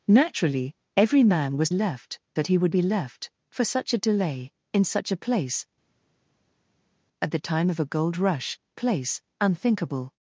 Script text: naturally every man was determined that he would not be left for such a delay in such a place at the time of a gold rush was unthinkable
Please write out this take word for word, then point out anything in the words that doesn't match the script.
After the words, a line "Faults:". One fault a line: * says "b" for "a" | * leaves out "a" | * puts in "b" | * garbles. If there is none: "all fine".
naturally every man was left that he would be left for such a delay in such a place at the time of a gold rush place unthinkable
Faults:
* says "left" for "determined"
* leaves out "not"
* says "place" for "was"